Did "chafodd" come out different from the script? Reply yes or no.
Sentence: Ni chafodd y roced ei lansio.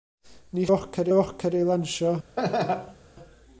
yes